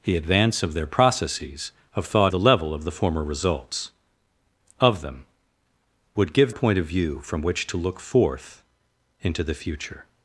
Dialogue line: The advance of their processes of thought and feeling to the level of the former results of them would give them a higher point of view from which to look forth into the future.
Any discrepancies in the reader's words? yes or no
yes